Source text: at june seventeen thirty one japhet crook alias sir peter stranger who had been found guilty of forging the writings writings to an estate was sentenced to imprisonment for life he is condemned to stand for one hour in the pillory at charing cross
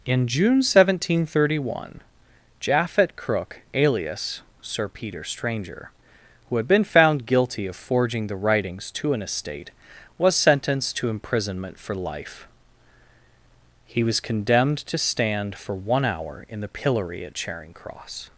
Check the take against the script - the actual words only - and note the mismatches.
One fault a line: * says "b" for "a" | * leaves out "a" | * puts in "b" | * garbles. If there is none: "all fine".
* says "in" for "at"
* leaves out "writings"
* says "was" for "is"